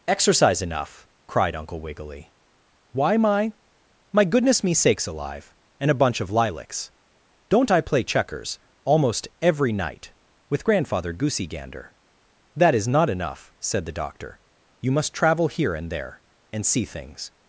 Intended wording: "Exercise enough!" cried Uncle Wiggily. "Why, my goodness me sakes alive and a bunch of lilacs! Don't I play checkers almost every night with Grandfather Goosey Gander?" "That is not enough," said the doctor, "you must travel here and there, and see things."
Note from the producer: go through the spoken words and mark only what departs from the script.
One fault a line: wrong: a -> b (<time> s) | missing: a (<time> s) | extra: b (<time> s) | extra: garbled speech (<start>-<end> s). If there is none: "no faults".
extra: my (4.1 s)